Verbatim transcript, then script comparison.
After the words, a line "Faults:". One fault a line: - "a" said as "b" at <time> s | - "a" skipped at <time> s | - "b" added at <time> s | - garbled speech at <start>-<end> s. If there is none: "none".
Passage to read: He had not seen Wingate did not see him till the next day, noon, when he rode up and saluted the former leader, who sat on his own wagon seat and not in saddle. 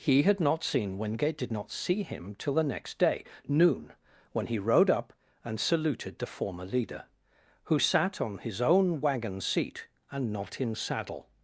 He had not seen Wingate did not see him till the next day, noon, when he rode up and saluted the former leader, who sat on his own wagon seat and not in saddle.
Faults:
none